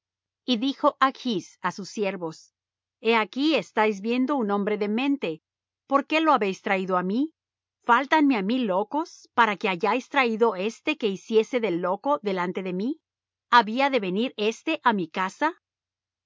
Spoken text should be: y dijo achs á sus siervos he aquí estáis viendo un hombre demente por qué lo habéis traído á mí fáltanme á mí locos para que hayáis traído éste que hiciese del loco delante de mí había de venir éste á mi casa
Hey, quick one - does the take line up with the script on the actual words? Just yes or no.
yes